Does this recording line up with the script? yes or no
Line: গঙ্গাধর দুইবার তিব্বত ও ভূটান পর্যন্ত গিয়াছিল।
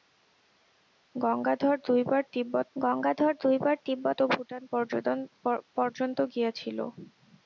no